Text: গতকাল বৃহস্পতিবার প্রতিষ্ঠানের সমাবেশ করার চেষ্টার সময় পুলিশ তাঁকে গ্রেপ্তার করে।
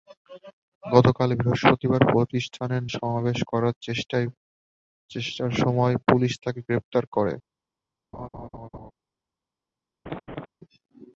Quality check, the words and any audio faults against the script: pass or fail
fail